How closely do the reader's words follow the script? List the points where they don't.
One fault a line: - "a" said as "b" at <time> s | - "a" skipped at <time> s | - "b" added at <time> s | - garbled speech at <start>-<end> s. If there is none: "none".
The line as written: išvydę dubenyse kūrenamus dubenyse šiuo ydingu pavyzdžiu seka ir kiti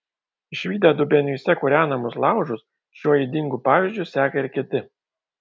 - "dubenyse" said as "laužus" at 2.2 s